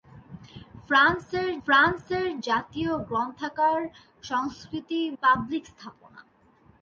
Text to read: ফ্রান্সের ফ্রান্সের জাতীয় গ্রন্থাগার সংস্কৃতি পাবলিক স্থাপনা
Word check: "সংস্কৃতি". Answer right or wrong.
right